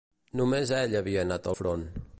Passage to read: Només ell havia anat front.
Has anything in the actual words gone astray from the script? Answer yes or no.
no